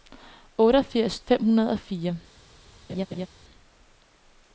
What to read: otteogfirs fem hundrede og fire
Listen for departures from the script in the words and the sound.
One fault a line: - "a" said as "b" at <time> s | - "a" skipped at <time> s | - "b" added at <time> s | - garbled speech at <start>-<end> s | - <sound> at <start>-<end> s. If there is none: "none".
- laugh at 2.9-3.3 s